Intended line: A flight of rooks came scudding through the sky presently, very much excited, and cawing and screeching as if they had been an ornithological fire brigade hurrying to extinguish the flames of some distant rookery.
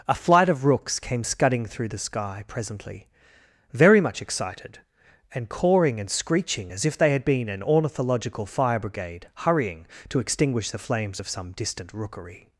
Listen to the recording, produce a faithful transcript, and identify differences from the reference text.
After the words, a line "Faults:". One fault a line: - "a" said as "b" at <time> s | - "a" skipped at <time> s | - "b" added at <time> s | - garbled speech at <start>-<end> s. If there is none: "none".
A flight of rooks came scudding through the sky presently, very much excited, and cawing and screeching as if they had been an ornithological fire brigade hurrying to extinguish the flames of some distant rookery.
Faults:
none